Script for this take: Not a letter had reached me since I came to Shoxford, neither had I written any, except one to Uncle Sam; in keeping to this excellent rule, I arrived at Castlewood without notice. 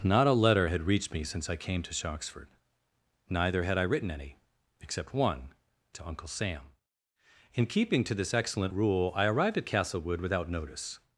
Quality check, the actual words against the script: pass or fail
pass